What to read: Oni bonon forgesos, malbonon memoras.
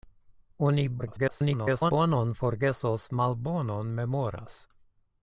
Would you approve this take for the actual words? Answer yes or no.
no